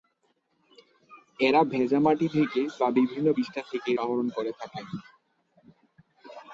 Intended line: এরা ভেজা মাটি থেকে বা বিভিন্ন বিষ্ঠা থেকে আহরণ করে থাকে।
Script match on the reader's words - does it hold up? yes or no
yes